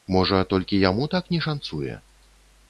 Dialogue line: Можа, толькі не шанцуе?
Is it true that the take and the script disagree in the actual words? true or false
true